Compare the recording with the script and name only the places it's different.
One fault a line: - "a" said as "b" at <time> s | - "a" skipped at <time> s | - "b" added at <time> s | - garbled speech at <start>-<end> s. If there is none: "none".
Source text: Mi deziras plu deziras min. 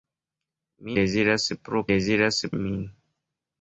none